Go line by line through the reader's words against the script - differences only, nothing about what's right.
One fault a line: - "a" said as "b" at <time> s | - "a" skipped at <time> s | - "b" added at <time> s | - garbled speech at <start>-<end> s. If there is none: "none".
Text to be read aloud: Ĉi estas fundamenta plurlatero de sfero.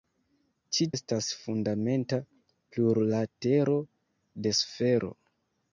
none